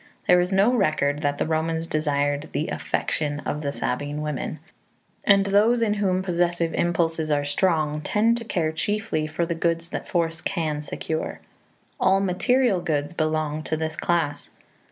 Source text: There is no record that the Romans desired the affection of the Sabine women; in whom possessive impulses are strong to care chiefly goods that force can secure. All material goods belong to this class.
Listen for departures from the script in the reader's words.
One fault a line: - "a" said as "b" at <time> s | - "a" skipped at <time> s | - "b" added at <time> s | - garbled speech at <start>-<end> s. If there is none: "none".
- "and those" added at 5.2 s
- "tend" added at 8.0 s
- "for the" added at 9.3 s